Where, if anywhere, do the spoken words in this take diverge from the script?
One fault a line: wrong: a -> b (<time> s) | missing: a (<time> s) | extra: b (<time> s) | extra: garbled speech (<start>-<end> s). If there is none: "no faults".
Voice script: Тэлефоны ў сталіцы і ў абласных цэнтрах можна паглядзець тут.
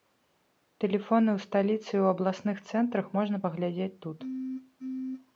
no faults